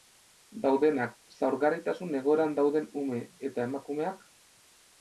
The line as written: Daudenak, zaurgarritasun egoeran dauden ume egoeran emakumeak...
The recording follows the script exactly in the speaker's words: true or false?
false